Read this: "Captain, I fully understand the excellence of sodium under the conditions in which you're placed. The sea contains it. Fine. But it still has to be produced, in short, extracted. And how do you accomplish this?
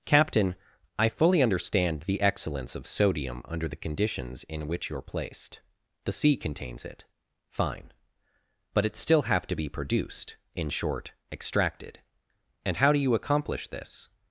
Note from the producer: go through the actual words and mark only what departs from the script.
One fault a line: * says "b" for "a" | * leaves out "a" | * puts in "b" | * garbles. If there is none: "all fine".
* says "have" for "has"